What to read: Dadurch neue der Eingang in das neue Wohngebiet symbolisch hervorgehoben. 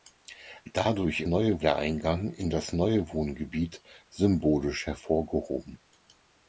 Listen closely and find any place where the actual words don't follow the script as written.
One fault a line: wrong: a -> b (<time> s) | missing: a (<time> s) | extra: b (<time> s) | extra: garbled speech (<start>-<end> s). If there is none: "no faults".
no faults